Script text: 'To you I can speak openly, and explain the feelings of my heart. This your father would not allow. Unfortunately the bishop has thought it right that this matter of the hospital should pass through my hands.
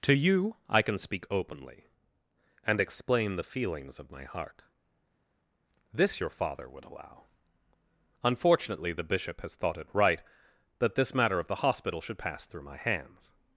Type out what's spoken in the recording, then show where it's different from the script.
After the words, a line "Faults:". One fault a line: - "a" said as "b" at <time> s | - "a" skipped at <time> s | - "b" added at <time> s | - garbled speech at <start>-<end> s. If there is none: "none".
'To you I can speak openly, and explain the feelings of my heart. This your father would allow. Unfortunately the bishop has thought it right that this matter of the hospital should pass through my hands.
Faults:
- "not" skipped at 6.8 s